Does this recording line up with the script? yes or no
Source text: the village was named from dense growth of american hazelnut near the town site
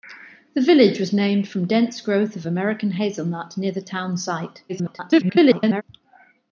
no